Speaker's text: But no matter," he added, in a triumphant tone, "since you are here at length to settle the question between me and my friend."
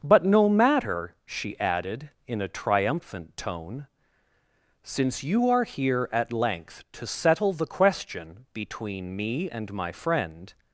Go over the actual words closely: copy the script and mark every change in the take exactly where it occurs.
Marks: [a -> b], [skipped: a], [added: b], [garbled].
But no matter," [he -> she] added, in a triumphant tone, "since you are here at length to settle the question between me and my friend."